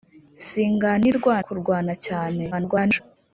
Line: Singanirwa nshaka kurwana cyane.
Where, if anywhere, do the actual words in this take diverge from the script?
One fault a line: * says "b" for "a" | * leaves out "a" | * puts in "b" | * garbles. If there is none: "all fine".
* leaves out "nshaka"
* garbles